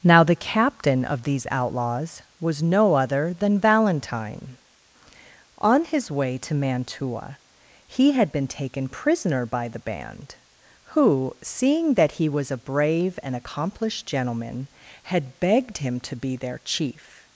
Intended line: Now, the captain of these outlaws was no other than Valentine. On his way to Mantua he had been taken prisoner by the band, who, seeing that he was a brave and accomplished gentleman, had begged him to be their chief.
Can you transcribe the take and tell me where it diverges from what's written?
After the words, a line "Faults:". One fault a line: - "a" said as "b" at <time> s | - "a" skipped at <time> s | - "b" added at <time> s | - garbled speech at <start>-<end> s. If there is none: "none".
Now, the captain of these outlaws was no other than Valentine. On his way to Mantua he had been taken prisoner by the band, who, seeing that he was a brave and accomplished gentleman, had begged him to be their chief.
Faults:
none